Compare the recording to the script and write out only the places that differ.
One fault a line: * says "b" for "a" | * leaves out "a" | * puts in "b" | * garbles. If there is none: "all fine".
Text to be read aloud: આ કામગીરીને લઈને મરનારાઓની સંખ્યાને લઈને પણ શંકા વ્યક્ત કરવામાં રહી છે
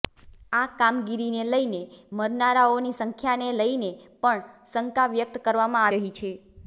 all fine